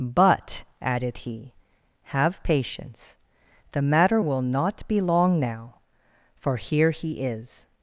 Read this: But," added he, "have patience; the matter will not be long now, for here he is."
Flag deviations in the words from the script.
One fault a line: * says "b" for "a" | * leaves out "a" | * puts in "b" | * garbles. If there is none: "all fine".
all fine